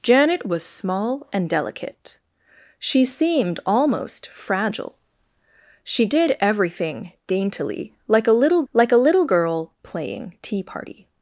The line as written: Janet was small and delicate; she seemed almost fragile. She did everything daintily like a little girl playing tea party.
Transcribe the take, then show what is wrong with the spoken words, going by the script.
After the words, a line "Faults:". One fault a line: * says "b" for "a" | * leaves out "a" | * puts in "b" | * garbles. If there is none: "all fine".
Janet was small and delicate; she seemed almost fragile. She did everything daintily like a little like a little girl playing tea party.
Faults:
* puts in "like a little"